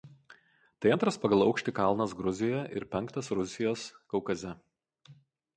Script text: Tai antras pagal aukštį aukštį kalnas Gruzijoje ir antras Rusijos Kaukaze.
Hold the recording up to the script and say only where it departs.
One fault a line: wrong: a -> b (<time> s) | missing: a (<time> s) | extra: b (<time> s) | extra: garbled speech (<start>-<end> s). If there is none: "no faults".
missing: aukštį (1.7 s)
wrong: antras -> penktas (2.9 s)